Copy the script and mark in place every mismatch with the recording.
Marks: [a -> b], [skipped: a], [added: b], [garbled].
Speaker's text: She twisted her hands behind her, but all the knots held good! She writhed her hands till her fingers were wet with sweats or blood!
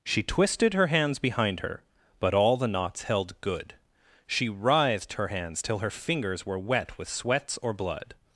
She twisted her hands behind her, but all the knots held good! She writhed her hands till her fingers were wet with sweats or blood!